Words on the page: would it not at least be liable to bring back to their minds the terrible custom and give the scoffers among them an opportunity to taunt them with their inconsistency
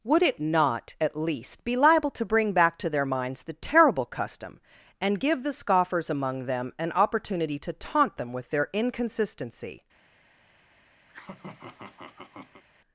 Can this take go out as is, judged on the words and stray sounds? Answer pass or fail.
fail